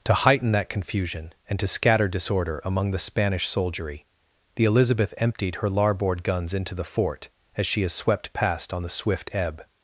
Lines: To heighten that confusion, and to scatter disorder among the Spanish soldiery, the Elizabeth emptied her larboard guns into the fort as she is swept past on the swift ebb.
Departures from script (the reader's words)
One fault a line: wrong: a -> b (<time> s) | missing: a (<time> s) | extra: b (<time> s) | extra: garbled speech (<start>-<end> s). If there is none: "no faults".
no faults